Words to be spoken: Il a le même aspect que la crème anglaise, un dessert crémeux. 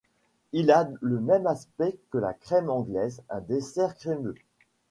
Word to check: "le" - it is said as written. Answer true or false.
true